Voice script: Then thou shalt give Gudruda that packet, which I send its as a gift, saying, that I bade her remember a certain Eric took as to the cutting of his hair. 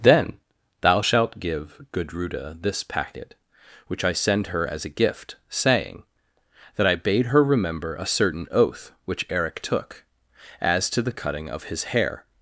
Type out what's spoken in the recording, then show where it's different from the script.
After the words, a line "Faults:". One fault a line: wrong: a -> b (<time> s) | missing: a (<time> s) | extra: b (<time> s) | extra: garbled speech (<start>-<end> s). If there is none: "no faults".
Then thou shalt give Gudruda this packet, which I send her as a gift, saying, that I bade her remember a certain oath which Eric took as to the cutting of his hair.
Faults:
wrong: that -> this (2.6 s)
wrong: its -> her (4.5 s)
extra: oath which (8.5 s)